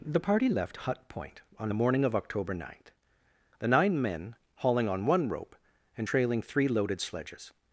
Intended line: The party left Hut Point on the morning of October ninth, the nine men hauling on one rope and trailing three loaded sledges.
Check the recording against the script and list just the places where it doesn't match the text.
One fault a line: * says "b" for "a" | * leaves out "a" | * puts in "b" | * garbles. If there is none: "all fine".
all fine